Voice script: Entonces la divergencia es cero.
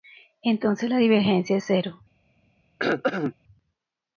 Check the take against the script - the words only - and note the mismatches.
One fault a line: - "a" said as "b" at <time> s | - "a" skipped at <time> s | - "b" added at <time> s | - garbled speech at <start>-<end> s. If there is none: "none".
none